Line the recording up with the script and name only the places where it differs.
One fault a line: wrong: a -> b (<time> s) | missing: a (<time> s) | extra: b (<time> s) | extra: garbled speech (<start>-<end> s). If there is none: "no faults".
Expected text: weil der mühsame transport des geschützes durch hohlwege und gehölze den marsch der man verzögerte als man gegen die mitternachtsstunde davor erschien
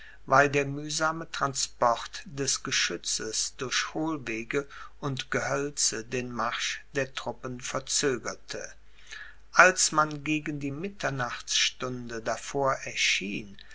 wrong: man -> truppen (7.1 s)